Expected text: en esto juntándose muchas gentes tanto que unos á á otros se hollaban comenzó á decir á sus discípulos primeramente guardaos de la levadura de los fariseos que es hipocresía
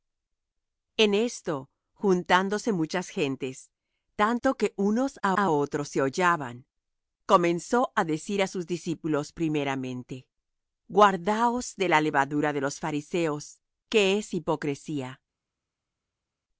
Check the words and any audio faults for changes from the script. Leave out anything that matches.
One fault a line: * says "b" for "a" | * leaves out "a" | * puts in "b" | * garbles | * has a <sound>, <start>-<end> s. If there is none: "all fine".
all fine